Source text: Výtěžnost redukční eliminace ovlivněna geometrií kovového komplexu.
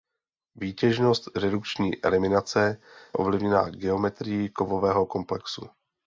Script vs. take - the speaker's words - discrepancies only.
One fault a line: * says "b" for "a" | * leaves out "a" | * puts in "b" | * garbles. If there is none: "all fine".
all fine